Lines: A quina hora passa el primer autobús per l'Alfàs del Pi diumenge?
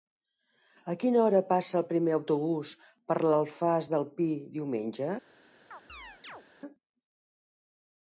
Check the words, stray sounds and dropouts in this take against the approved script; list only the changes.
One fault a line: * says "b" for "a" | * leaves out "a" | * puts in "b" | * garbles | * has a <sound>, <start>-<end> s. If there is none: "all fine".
* has a chirp, 5.7-6.4 s